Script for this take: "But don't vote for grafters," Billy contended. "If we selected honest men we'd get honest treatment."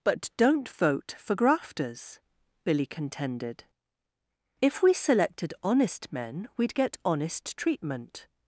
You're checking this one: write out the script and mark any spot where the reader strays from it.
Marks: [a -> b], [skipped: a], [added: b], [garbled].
"But don't vote for grafters," Billy contended. "If we selected honest men we'd get honest treatment."